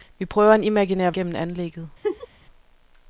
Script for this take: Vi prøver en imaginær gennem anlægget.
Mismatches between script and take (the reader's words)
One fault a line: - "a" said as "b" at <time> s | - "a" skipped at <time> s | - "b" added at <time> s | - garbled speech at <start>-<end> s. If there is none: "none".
none